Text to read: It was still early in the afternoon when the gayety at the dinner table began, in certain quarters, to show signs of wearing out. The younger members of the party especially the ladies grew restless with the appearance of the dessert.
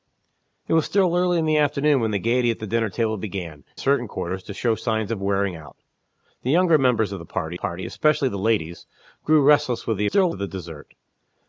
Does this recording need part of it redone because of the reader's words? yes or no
yes